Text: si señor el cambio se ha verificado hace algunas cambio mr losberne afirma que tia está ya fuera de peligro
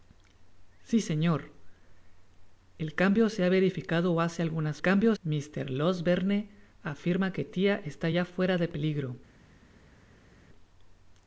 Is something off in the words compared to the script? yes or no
no